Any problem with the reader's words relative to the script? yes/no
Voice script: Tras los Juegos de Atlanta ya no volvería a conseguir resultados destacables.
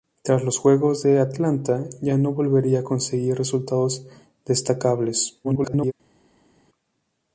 yes